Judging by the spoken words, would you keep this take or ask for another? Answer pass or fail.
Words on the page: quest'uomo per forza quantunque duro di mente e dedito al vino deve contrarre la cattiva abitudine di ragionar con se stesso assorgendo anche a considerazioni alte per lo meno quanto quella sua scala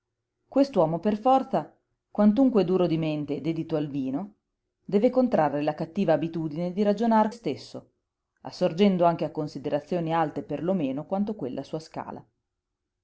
fail